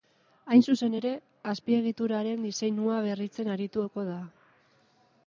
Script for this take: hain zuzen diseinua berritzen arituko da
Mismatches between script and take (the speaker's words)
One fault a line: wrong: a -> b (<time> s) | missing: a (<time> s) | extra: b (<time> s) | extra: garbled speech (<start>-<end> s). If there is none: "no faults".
extra: ere azpiegituraren (1.0 s)